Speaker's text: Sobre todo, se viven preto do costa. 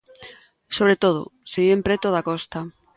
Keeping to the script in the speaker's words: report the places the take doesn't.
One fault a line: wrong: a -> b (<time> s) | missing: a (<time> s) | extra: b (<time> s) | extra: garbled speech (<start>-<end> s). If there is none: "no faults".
wrong: do -> da (2.1 s)